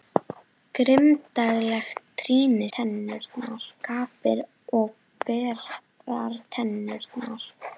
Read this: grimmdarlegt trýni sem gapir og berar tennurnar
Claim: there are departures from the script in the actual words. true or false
true